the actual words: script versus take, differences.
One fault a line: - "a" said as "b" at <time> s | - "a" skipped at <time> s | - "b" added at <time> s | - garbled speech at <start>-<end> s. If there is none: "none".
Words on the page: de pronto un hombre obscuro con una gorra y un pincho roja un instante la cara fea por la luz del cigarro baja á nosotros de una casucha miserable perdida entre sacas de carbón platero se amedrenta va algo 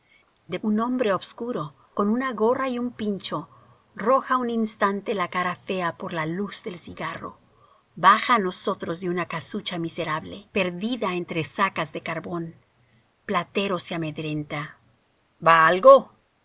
- "pronto" skipped at 0.6 s